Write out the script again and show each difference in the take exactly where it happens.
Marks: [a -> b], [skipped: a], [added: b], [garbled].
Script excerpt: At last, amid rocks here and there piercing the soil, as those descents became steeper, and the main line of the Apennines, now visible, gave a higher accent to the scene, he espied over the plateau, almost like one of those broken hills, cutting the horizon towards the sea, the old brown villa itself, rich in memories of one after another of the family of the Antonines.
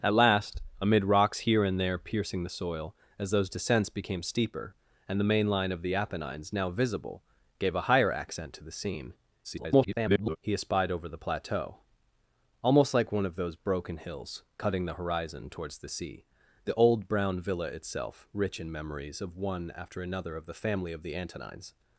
At last, amid rocks here and there piercing the soil, as those descents became steeper, and the main line of the Apennines, now visible, gave a higher accent to the scene, [garbled] he espied over the plateau, almost like one of those broken hills, cutting the horizon towards the sea, the old brown villa itself, rich in memories of one after another of the family of the Antonines.